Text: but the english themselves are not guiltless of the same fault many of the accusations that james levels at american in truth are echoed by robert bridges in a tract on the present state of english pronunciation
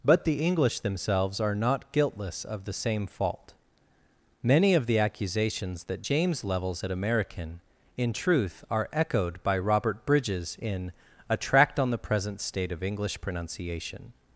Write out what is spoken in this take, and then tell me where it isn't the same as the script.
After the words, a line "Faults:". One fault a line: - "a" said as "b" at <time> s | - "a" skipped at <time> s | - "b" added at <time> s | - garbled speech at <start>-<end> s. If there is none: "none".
but the english themselves are not guiltless of the same fault many of the accusations that james levels at american in truth are echoed by robert bridges in a tract on the present state of english pronunciation
Faults:
none